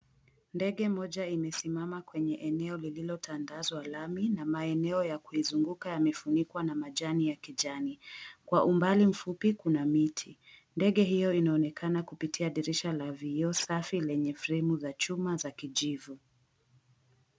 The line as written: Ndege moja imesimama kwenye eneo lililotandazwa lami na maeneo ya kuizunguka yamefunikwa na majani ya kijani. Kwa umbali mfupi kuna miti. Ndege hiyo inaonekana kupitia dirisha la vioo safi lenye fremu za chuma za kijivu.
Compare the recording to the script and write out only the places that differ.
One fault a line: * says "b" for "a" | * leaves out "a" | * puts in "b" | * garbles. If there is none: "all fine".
all fine